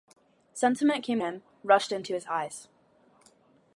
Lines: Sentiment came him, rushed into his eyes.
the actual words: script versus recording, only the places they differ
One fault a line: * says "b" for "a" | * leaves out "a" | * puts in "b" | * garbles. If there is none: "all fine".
all fine